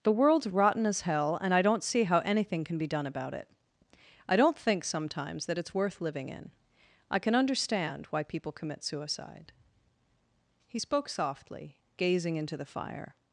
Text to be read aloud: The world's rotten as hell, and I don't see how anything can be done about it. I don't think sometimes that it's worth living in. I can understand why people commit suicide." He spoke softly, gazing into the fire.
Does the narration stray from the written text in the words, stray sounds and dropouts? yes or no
no